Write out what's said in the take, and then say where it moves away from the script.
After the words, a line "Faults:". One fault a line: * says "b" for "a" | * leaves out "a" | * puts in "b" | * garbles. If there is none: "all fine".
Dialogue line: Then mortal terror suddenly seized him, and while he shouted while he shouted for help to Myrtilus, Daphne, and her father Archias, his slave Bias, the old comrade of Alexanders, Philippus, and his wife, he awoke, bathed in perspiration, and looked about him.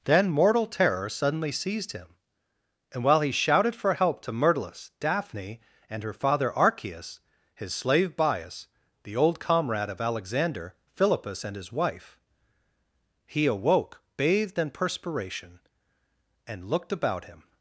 Then mortal terror suddenly seized him, and while he shouted for help to Myrtilus, Daphne, and her father Archias, his slave Bias, the old comrade of Alexander, Philippus, and his wife, he awoke, bathed in perspiration, and looked about him.
Faults:
* leaves out "while he shouted"
* says "Alexander" for "Alexanders"